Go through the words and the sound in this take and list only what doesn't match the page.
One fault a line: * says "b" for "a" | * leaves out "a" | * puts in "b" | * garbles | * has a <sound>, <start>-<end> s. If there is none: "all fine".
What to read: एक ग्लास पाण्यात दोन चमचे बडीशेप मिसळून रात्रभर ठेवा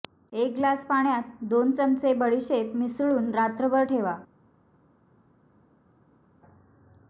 all fine